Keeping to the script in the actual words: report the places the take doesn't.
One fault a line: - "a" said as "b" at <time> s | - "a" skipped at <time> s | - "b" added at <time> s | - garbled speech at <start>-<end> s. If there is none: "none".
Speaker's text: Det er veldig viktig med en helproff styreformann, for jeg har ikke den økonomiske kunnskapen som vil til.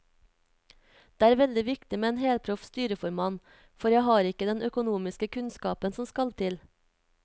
- "vil" said as "skal" at 6.1 s